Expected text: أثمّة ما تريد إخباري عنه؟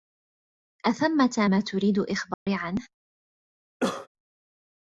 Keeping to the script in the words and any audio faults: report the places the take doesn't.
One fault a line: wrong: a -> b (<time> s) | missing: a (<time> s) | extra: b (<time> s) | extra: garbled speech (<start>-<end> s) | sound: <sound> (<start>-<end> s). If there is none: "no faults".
sound: dropout (2.3-2.5 s)
sound: cough (3.8-4.1 s)